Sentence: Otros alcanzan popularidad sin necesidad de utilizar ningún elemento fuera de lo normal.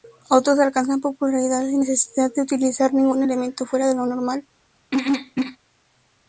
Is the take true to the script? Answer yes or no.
yes